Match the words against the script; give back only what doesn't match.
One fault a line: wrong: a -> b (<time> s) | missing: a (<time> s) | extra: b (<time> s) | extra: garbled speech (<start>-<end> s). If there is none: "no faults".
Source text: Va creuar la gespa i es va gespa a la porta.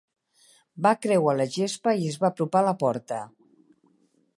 wrong: gespa -> apropar (2.3 s)